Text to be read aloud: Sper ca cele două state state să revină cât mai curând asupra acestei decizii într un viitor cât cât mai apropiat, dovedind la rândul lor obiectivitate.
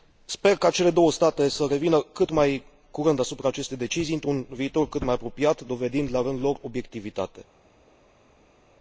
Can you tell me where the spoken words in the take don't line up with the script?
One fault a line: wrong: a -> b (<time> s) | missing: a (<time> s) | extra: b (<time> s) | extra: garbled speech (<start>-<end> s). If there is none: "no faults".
missing: state (1.5 s)
missing: cât (5.0 s)